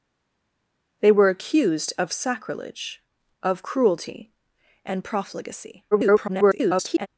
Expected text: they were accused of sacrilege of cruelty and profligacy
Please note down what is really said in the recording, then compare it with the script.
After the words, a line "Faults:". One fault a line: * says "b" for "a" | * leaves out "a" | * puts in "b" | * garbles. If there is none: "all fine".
they were accused of sacrilege of cruelty and profligacy [garbled]
Faults:
* garbles